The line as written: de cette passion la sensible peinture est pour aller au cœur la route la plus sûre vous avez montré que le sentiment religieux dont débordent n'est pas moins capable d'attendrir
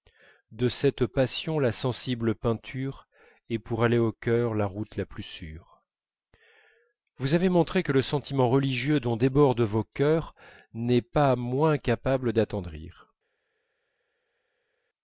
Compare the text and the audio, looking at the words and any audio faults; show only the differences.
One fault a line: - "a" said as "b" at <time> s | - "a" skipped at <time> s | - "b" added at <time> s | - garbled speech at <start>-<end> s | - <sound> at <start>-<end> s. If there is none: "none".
- "vos chœurs" added at 9.6 s